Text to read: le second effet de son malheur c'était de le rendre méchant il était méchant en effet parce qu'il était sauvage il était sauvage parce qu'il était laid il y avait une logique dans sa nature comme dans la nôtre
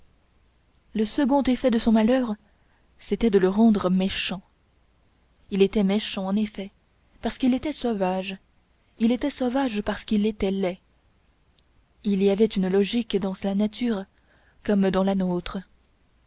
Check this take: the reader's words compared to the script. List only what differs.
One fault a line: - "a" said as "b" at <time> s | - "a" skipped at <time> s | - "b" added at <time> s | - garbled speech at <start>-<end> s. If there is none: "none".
none